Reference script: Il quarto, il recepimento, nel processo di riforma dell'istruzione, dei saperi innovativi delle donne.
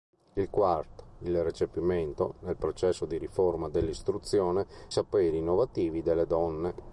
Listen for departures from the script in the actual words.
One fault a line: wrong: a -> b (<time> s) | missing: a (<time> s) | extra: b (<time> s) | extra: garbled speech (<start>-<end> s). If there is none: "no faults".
missing: dei (4.7 s)